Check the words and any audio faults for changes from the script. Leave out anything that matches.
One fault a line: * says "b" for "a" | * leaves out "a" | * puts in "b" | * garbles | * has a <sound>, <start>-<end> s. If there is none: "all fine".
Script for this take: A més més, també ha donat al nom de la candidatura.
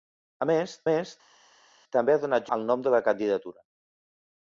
all fine